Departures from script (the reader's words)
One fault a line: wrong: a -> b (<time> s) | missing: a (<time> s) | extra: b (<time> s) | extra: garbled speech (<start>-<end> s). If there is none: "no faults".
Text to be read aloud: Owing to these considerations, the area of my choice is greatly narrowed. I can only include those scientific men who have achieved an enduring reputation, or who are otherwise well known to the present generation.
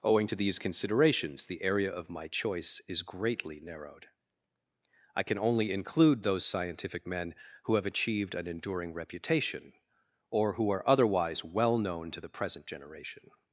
no faults